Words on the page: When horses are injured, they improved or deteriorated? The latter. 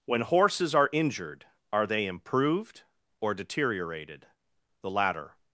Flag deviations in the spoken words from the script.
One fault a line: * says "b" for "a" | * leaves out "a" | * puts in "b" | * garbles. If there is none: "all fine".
* puts in "are"